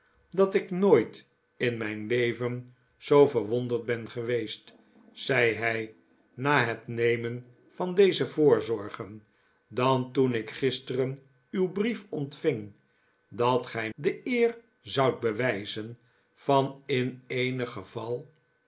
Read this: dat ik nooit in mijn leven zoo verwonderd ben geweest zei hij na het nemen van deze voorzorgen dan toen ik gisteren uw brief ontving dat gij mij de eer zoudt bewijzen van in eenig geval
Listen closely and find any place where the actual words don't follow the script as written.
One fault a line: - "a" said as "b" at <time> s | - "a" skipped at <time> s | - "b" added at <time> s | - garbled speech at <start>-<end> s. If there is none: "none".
- "mij" skipped at 13.9 s